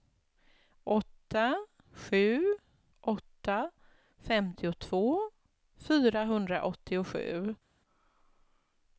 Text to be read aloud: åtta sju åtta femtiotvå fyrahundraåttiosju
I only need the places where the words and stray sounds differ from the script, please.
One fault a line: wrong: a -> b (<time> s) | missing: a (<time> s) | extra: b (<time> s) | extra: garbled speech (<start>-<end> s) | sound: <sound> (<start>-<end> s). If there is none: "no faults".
no faults